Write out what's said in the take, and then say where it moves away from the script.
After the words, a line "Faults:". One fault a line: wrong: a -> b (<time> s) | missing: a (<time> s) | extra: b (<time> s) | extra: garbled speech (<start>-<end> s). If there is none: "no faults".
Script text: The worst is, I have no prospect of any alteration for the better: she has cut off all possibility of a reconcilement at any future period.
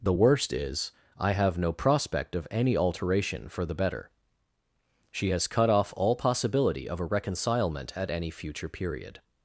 The worst is, I have no prospect of any alteration for the better: she has cut off all possibility of a reconcilement at any future period.
Faults:
no faults